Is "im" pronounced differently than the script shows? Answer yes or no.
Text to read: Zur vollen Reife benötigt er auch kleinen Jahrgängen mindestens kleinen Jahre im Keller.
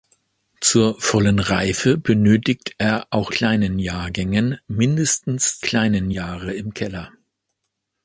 no